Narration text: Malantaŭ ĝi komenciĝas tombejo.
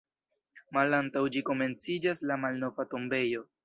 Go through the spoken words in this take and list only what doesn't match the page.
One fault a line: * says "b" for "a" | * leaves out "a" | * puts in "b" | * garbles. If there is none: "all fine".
* puts in "la Malnova"